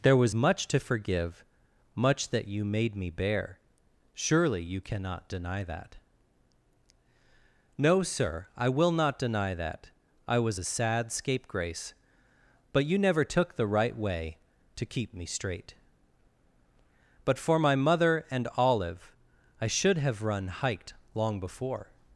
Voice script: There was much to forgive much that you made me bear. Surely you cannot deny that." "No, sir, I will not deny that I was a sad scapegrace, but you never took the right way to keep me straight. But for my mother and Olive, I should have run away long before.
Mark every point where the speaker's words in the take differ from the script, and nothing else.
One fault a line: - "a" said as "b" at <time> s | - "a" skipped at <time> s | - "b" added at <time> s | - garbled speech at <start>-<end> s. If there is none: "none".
- "away" said as "hiked" at 20.5 s